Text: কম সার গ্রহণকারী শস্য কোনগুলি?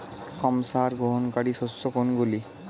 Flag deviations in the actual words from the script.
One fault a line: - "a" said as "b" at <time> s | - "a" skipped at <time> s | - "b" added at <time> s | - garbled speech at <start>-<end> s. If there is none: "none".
none